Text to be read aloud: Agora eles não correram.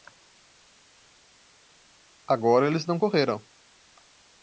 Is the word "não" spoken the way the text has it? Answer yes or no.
yes